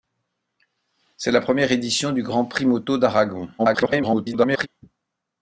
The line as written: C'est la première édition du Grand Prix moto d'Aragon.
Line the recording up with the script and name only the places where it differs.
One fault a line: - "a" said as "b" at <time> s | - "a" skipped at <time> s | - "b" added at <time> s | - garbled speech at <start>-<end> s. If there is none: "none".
- garbled speech at 3.6-4.7 s